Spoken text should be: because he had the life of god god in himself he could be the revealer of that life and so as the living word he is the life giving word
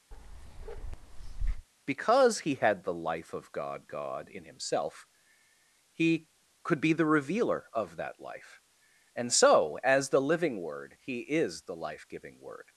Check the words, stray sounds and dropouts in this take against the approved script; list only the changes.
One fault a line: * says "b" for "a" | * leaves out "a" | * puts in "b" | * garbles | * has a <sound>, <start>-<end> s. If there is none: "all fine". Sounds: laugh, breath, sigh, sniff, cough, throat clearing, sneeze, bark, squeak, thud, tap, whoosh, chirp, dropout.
* has a bark, 0.1-1.7 s